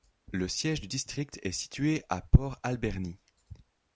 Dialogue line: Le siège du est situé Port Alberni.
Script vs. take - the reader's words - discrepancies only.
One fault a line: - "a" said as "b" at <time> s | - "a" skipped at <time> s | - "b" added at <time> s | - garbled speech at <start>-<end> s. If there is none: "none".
- "district" added at 0.8 s
- "à" added at 2.1 s